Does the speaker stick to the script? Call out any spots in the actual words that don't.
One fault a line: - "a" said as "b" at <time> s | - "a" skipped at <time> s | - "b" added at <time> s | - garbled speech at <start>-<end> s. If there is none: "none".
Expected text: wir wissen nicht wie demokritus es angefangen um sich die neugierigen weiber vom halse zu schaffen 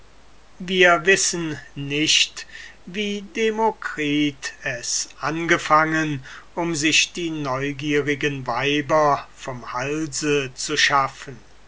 none